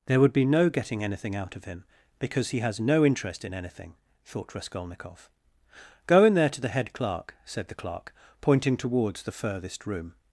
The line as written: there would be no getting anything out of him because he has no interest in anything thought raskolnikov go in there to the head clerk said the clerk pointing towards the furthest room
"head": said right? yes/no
yes